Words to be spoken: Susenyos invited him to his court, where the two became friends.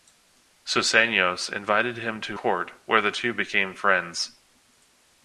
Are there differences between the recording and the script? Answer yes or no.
yes